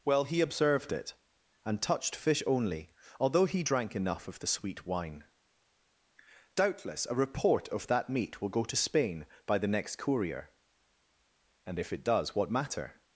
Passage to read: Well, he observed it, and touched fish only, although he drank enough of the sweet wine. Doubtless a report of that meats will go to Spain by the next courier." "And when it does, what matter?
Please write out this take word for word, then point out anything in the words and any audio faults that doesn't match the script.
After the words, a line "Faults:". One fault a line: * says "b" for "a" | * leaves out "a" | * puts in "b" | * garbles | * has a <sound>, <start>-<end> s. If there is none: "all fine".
Well, he observed it, and touched fish only, although he drank enough of the sweet wine. Doubtless a report of that meat will go to Spain by the next courier." "And if it does, what matter?
Faults:
* says "meat" for "meats"
* says "if" for "when"